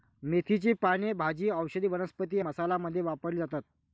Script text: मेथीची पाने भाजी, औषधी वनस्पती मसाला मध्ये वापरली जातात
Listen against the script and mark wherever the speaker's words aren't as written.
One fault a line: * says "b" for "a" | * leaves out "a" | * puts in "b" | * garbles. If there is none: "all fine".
all fine